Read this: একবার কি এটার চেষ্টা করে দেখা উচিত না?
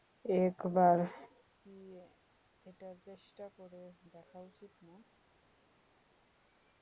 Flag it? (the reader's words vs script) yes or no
no